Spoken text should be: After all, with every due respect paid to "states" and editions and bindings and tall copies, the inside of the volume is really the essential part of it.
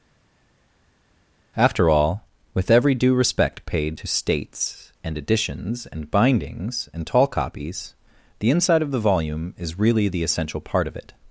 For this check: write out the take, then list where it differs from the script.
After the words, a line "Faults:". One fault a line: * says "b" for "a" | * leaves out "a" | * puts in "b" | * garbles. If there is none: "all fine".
After all, with every due respect paid to "states" and editions and bindings and tall copies, the inside of the volume is really the essential part of it.
Faults:
all fine